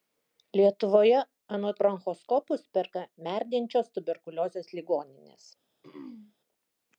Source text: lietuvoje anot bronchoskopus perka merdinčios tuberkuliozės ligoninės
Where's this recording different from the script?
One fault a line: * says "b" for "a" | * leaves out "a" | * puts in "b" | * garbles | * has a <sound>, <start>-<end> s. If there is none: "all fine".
* has a throat clearing, 5.8-6.3 s